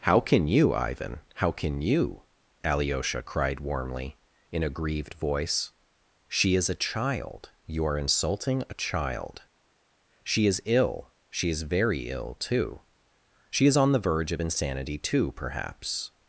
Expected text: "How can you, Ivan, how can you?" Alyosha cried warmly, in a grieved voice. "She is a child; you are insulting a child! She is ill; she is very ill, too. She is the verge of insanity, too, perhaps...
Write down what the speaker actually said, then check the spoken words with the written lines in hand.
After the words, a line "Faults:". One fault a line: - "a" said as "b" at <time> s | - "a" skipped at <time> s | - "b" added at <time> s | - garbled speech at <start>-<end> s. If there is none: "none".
"How can you, Ivan, how can you?" Alyosha cried warmly, in a grieved voice. "She is a child; you are insulting a child! She is ill; she is very ill, too. She is on the verge of insanity, too, perhaps...
Faults:
- "on" added at 13.8 s